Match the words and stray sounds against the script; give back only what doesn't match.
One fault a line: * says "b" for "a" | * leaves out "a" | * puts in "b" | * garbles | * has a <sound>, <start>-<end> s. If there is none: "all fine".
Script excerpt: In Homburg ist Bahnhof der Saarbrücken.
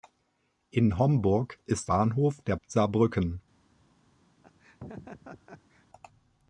* has a laugh, 4.4-5.9 s